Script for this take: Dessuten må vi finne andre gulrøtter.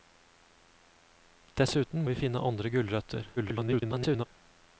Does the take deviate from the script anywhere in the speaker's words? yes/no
yes